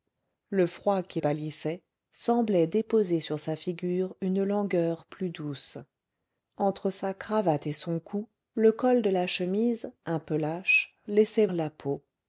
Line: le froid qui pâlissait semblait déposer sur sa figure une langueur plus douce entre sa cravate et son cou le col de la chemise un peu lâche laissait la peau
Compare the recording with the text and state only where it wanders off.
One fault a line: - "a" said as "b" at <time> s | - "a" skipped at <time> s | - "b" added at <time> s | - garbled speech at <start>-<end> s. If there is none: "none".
none